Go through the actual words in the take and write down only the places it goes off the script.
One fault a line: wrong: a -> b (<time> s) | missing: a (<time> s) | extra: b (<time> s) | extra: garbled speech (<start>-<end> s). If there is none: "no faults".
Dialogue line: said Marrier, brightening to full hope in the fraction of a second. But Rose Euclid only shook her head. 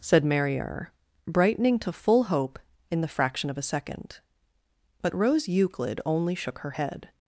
no faults